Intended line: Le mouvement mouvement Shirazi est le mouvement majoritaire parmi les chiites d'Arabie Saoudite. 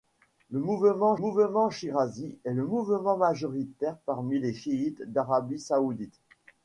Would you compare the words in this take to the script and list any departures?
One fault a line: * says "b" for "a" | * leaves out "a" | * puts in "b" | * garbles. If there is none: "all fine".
all fine